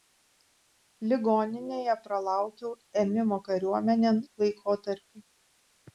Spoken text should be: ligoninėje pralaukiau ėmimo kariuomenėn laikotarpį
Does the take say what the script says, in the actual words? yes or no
yes